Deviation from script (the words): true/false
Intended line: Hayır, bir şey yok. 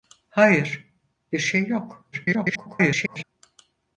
true